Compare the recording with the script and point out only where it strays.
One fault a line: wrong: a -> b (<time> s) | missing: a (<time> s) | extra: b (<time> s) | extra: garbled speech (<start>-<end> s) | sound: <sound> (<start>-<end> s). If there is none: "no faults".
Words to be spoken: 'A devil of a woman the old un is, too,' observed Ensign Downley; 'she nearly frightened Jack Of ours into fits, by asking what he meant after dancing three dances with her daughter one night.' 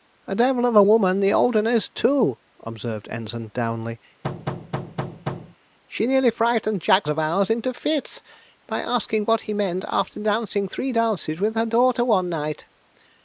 sound: thud (4.2-5.6 s)